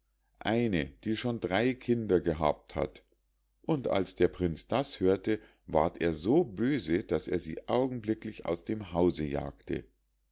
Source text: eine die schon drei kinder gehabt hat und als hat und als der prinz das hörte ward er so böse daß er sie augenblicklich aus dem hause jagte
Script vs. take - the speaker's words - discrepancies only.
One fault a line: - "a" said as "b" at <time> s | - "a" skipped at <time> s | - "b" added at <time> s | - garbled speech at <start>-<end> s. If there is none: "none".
- "hat und als" skipped at 4.2 s